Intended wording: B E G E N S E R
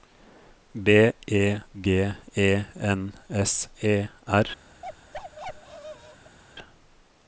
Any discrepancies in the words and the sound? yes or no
yes